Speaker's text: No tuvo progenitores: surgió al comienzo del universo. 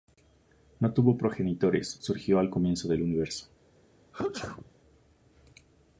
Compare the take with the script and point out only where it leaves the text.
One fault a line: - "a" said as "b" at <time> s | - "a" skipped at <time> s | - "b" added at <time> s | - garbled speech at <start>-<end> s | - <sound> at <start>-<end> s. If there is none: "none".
- sneeze at 4.1-4.7 s